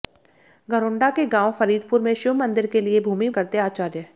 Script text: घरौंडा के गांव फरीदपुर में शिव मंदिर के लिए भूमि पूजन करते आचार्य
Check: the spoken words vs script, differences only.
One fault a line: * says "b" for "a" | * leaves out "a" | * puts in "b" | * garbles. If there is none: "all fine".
* leaves out "पूजन"